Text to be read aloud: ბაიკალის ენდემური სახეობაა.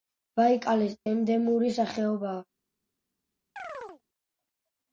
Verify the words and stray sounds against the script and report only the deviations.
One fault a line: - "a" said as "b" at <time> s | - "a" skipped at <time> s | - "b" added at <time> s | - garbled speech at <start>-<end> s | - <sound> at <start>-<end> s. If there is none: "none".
- chirp at 3.6-4.0 s